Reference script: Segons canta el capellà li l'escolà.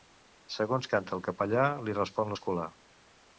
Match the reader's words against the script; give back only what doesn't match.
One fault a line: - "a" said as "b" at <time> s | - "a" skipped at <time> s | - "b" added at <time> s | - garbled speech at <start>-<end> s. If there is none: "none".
- "respon" added at 2.0 s